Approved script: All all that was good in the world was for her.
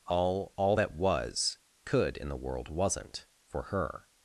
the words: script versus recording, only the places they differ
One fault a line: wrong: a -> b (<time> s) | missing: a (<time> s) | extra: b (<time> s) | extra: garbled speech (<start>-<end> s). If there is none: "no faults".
wrong: good -> could (1.8 s)
wrong: was -> wasn't (2.7 s)